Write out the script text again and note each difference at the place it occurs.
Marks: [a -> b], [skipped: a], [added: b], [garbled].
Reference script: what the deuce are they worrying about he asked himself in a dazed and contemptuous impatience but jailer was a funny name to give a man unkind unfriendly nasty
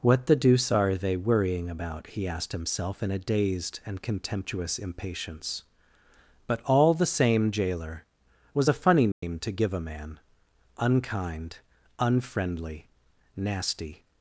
what the deuce are they worrying about he asked himself in a dazed and contemptuous impatience but [added: all the same] jailer was a funny name to give a man unkind unfriendly nasty